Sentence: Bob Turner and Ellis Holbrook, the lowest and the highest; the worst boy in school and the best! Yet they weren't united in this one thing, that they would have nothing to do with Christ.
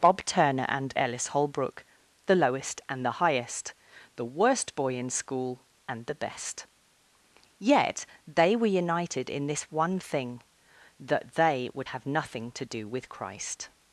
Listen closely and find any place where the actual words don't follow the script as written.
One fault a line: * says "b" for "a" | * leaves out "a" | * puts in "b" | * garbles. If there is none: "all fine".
* says "were" for "weren't"